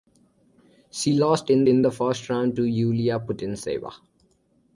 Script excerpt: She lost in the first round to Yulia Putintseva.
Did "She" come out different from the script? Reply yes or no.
no